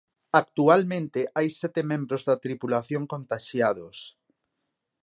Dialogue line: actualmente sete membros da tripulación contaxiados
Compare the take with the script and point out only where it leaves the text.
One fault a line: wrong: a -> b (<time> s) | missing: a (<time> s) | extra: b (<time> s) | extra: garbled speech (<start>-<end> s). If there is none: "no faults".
extra: hai (1.4 s)